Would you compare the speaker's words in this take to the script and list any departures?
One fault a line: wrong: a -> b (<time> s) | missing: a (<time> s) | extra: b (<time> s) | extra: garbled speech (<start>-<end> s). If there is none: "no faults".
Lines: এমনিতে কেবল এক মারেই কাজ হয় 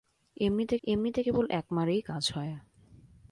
extra: এমনিতে (0.8 s)